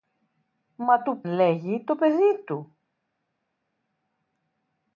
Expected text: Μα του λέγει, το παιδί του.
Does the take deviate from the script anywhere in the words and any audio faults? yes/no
no